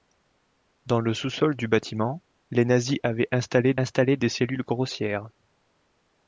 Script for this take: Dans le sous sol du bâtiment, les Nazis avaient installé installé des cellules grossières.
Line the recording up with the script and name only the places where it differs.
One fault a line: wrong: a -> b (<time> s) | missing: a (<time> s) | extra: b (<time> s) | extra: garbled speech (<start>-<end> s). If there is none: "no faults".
no faults